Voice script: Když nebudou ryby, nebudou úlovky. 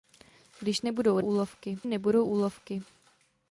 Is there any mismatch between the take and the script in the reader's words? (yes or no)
yes